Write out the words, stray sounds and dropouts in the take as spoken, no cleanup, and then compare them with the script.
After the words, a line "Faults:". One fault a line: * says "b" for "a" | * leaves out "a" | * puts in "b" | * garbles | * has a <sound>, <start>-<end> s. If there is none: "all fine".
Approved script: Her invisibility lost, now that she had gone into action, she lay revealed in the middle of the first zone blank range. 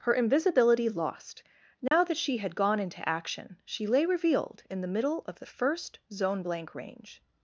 Her invisibility lost, now that she had gone into action, she lay revealed in the middle of the first zone blank range.
Faults:
* has a dropout, 1.9-1.9 s